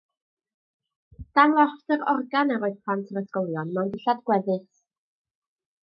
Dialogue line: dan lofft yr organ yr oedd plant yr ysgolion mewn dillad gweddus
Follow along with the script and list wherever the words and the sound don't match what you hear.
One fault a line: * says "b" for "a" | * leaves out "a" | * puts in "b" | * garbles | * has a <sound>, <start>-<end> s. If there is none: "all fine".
all fine